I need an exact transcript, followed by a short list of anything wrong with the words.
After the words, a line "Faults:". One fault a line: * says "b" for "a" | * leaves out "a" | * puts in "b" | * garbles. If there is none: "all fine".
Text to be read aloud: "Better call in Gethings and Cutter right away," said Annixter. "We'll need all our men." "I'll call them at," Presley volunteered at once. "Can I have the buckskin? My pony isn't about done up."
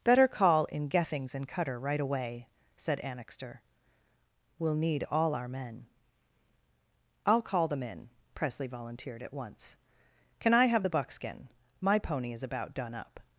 "Better call in Gethings and Cutter right away," said Annixter. "We'll need all our men." "I'll call them in," Presley volunteered at once. "Can I have the buckskin? My pony is about done up."
Faults:
* says "in" for "at"
* says "is" for "isn't"